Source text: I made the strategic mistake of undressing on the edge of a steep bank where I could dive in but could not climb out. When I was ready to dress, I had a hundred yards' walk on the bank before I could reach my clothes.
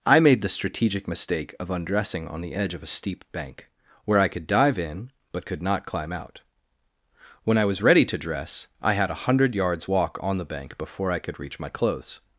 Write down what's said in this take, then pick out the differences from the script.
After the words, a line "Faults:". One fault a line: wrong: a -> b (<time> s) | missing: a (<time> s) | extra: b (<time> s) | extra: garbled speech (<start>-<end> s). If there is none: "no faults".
I made the strategic mistake of undressing on the edge of a steep bank where I could dive in but could not climb out. When I was ready to dress, I had a hundred yards' walk on the bank before I could reach my clothes.
Faults:
no faults